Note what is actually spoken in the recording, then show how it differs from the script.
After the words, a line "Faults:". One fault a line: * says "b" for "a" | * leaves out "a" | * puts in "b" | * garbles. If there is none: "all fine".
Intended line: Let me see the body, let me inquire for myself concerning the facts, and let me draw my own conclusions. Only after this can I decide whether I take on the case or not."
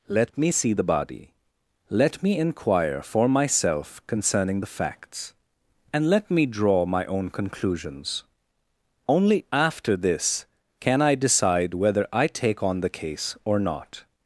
Let me see the body, let me inquire for myself concerning the facts, and let me draw my own conclusions. Only after this can I decide whether I take on the case or not."
Faults:
all fine